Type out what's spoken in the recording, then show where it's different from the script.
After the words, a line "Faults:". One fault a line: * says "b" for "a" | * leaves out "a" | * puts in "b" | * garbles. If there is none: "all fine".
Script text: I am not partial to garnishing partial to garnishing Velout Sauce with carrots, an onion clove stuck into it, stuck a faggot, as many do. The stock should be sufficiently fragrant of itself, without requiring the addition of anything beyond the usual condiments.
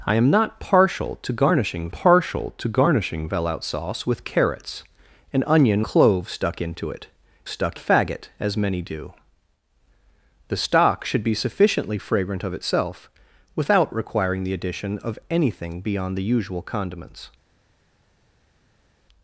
I am not partial to garnishing partial to garnishing Velout Sauce with carrots, an onion clove stuck into it, stuck a faggot, as many do. The stock should be sufficiently fragrant of itself, without requiring the addition of anything beyond the usual condiments.
Faults:
all fine